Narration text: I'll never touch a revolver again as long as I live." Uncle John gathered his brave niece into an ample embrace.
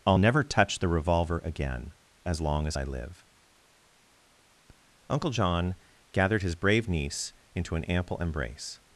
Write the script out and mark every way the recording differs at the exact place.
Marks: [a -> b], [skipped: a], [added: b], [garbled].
I'll never touch [a -> the] revolver again as long as I live." Uncle John gathered his brave niece into an ample embrace.